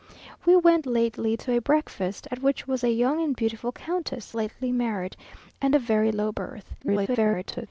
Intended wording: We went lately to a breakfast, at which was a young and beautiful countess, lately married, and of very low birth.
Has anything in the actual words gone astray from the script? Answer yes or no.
yes